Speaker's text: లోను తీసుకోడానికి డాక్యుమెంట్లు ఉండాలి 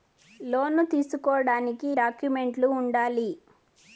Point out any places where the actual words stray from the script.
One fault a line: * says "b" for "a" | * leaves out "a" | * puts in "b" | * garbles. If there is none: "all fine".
all fine